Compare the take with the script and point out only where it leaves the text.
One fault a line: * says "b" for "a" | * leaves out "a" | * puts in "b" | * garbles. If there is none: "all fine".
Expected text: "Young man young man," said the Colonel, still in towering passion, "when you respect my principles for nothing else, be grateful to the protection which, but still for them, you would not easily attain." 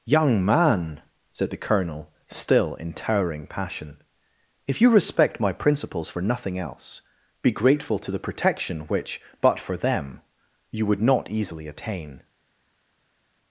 * leaves out "young man"
* says "if" for "when"
* leaves out "still"